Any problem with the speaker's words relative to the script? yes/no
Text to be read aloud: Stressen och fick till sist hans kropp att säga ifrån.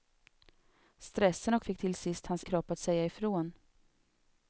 no